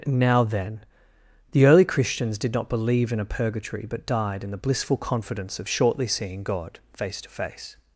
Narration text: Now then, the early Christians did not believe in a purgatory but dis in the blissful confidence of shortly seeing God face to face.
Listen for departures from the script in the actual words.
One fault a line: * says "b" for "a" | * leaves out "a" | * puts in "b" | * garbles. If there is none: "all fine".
* says "died" for "dis"